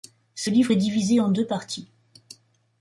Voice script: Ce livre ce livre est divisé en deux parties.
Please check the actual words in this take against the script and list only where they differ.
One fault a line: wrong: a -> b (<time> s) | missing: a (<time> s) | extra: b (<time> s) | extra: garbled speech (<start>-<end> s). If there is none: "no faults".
missing: ce livre (0.7 s)